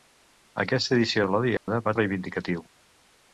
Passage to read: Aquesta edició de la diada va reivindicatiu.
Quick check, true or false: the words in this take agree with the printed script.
true